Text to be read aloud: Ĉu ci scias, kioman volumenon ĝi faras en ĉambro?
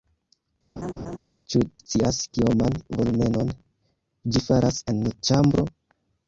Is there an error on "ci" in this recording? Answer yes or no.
yes